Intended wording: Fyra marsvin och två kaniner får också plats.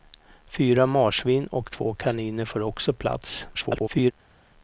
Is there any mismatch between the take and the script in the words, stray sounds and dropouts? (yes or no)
yes